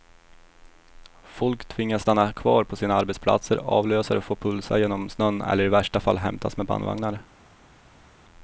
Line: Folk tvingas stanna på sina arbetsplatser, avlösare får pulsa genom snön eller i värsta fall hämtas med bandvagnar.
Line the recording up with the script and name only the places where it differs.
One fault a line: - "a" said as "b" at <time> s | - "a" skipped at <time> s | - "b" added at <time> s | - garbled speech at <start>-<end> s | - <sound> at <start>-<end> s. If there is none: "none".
- "kvar" added at 2.3 s